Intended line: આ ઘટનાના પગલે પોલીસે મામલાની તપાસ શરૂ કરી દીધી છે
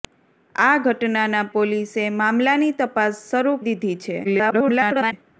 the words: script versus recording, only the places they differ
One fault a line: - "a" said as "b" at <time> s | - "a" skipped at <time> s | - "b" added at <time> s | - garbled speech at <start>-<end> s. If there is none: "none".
- "પગલે" skipped at 1.5 s
- "કરી" skipped at 3.6 s
- garbled speech at 4.2-5.1 s